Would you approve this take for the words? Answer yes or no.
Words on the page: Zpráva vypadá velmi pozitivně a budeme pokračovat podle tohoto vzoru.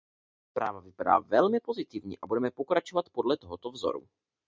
yes